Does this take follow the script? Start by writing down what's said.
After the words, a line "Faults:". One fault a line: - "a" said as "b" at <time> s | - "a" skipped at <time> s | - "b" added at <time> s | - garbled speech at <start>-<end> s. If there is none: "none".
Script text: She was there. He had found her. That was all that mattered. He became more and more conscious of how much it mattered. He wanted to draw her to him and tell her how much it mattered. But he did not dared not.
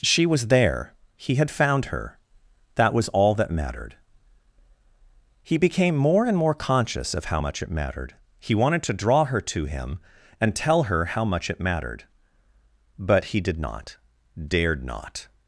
She was there. He had found her. That was all that mattered. He became more and more conscious of how much it mattered. He wanted to draw her to him and tell her how much it mattered. But he did not dared not.
Faults:
none